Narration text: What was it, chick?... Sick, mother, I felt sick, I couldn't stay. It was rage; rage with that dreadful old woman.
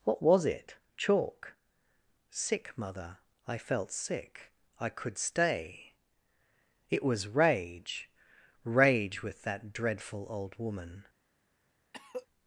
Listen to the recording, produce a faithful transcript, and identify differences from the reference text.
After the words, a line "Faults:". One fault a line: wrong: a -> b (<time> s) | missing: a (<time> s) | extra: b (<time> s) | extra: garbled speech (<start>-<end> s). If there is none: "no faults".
What was it, chalk?... Sick, mother, I felt sick, I could stay. It was rage; rage with that dreadful old woman.
Faults:
wrong: chick -> chalk (1.0 s)
wrong: couldn't -> could (4.9 s)